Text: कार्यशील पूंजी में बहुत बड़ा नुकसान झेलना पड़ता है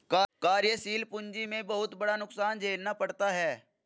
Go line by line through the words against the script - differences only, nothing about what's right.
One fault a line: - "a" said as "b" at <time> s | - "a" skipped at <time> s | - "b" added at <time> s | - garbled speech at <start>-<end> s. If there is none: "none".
none